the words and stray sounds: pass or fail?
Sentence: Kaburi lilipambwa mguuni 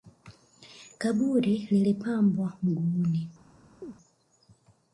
fail